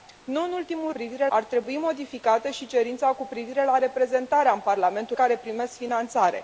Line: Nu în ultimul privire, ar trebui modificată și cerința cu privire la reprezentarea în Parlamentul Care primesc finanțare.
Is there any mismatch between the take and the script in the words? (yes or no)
no